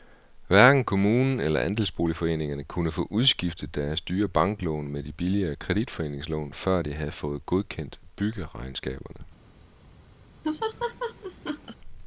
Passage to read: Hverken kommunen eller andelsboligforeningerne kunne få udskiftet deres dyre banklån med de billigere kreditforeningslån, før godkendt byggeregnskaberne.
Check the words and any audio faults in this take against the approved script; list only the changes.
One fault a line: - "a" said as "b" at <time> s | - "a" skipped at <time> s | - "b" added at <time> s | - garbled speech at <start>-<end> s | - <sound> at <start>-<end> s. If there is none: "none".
- "de havde fået" added at 6.8 s
- laugh at 10.4-11.8 s